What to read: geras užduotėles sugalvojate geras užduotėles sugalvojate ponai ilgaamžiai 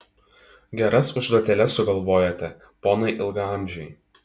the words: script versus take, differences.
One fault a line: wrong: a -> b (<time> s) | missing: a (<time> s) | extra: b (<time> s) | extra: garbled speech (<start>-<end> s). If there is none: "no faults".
missing: geras užduotėles sugalvojate (2.5 s)